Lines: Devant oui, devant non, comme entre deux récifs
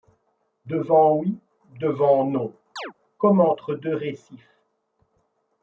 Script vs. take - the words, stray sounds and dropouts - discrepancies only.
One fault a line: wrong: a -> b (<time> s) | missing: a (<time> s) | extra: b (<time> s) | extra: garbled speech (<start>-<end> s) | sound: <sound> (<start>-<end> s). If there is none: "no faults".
sound: chirp (2.8-2.9 s)